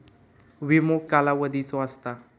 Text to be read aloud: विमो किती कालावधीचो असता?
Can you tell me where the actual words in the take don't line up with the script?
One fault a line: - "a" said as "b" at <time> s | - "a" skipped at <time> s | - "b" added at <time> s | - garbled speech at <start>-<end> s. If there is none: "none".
- "किती" skipped at 1.0 s